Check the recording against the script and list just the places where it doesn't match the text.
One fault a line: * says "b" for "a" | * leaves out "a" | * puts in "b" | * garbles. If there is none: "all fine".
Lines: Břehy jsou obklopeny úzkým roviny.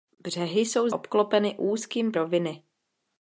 all fine